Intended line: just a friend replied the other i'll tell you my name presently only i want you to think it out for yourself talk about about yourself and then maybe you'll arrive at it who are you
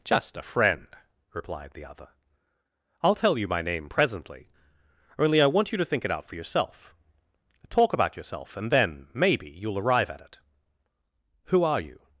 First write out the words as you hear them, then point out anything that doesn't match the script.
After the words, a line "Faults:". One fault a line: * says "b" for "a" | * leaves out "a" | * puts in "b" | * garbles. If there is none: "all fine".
just a friend replied the other i'll tell you my name presently only i want you to think it out for yourself talk about yourself and then maybe you'll arrive at it who are you
Faults:
* leaves out "about"